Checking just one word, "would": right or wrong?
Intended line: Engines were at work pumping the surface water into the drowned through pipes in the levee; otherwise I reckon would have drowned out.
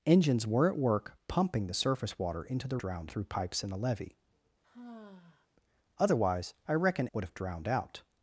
right